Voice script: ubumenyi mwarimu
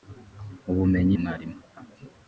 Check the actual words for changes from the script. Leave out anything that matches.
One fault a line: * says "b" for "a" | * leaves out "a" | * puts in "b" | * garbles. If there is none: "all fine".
all fine